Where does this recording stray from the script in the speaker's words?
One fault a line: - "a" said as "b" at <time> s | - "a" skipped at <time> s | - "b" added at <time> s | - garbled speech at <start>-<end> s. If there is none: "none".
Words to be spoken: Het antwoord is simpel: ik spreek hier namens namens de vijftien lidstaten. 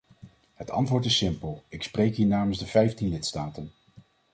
- "namens" skipped at 2.6 s